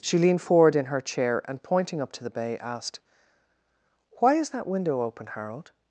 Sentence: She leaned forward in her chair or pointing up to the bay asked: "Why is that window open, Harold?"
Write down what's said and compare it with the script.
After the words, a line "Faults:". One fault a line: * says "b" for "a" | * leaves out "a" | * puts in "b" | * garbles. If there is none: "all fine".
She leaned forward in her chair and pointing up to the bay asked: "Why is that window open, Harold?"
Faults:
* says "and" for "or"